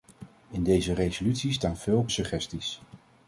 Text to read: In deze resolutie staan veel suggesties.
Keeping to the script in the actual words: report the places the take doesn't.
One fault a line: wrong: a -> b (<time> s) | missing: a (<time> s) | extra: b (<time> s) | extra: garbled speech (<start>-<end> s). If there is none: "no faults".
no faults